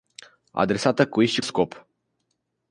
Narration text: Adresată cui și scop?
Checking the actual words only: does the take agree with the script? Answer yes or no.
yes